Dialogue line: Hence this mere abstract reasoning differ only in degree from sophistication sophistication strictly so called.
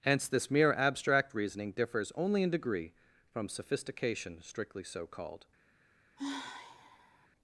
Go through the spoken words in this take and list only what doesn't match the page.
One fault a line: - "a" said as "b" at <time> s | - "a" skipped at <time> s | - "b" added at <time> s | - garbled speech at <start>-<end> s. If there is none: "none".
- "differ" said as "differs" at 1.7 s
- "sophistication" skipped at 4.4 s